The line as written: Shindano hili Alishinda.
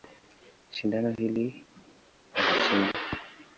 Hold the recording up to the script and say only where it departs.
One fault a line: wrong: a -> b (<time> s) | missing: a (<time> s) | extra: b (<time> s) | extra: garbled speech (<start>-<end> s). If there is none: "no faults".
no faults